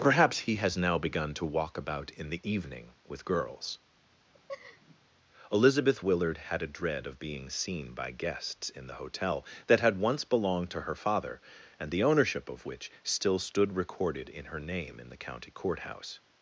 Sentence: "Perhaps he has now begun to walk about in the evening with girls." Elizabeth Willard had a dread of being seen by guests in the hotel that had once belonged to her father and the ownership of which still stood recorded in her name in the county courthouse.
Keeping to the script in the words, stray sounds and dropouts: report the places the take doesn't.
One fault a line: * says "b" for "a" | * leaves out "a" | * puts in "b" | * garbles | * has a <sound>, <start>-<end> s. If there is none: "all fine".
* has a laugh, 4.3-5.0 s